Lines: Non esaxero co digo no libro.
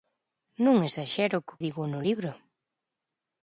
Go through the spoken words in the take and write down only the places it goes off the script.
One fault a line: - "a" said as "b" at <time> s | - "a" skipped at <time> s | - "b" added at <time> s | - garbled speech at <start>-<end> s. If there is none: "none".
none